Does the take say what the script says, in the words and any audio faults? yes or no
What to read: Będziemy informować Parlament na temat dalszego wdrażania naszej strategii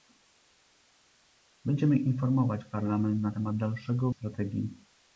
no